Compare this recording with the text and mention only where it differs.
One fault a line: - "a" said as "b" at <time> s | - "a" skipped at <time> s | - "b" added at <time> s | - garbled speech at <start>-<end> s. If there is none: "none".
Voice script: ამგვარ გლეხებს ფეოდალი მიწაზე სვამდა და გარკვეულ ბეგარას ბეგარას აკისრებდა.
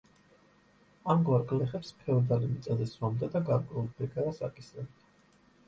- "ბეგარას" skipped at 4.4 s